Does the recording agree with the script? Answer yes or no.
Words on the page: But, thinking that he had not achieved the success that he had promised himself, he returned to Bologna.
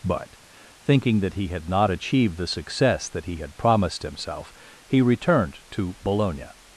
yes